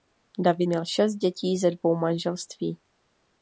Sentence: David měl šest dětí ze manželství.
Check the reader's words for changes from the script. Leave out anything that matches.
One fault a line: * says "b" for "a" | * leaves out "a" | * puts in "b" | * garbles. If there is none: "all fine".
* puts in "dvou"